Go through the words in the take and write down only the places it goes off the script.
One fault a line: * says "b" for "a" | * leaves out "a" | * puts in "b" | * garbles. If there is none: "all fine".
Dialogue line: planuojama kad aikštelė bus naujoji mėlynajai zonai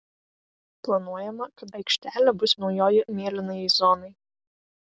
all fine